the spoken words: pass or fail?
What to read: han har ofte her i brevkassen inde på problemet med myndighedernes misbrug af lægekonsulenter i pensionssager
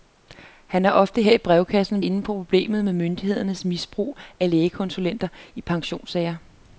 pass